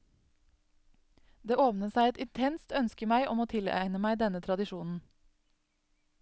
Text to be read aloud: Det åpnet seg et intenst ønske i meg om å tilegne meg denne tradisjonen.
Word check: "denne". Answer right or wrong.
right